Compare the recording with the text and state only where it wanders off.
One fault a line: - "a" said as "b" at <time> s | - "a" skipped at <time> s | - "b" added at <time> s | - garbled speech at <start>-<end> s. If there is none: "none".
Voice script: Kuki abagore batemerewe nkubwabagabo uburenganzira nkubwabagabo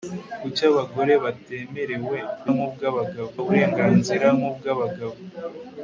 none